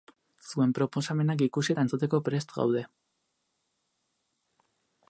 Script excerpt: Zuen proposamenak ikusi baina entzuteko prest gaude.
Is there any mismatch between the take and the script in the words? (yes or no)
yes